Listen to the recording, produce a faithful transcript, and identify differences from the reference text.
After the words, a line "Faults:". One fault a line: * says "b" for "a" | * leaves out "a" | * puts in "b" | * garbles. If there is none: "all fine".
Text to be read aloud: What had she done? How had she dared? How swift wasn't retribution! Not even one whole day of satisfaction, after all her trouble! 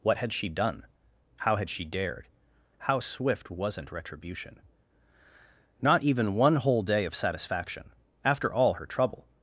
What had she done? How had she dared? How swift wasn't retribution! Not even one whole day of satisfaction, after all her trouble!
Faults:
all fine